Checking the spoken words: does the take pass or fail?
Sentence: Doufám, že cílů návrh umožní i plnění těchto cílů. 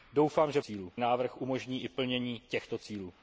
pass